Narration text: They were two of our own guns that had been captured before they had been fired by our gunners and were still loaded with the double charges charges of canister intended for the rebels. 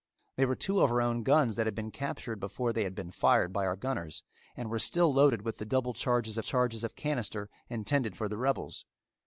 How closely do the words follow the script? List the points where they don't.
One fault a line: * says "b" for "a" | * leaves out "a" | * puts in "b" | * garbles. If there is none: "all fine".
all fine